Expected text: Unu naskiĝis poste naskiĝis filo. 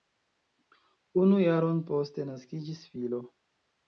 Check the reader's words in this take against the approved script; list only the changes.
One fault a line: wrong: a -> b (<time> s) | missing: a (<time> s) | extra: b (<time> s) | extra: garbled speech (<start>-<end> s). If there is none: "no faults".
wrong: naskiĝis -> jaron (1.4 s)